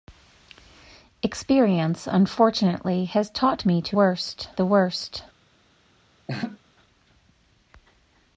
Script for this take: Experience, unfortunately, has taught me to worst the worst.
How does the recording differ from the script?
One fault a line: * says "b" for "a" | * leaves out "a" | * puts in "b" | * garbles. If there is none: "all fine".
all fine